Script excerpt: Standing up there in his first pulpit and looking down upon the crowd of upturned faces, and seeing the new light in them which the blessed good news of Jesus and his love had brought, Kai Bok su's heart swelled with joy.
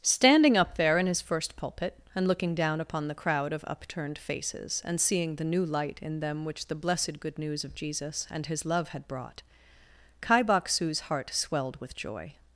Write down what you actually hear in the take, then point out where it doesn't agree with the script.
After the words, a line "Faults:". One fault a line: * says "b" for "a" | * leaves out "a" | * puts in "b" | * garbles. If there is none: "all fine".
Standing up there in his first pulpit and looking down upon the crowd of upturned faces, and seeing the new light in them which the blessed good news of Jesus and his love had brought, Kai Bok su's heart swelled with joy.
Faults:
all fine